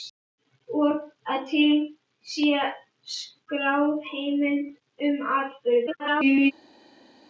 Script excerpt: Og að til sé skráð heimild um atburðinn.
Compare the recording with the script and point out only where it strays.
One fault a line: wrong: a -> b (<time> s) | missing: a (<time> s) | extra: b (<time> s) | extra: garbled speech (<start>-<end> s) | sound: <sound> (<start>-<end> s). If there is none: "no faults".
extra: garbled speech (5.9-6.5 s)